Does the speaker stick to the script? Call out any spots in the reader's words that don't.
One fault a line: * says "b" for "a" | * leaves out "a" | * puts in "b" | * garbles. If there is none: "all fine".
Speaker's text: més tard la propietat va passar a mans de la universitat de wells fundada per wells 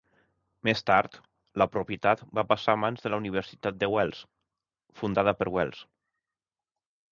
all fine